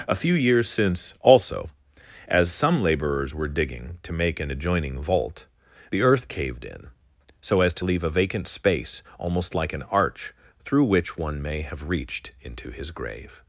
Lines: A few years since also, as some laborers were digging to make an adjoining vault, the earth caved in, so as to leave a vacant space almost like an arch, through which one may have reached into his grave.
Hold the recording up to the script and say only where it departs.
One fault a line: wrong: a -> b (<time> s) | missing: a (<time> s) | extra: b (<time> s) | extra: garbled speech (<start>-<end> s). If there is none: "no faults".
no faults